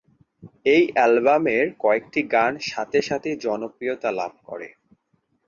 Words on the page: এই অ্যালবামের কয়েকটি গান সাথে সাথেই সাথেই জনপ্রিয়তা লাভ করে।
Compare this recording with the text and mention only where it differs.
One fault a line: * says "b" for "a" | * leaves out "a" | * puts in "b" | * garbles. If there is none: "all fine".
* leaves out "সাথেই"